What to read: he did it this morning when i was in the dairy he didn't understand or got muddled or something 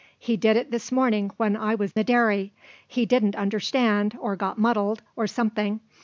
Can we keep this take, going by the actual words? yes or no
no